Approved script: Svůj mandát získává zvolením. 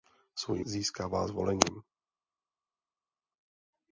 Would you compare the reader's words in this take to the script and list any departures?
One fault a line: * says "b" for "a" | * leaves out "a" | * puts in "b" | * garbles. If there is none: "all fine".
* leaves out "mandát"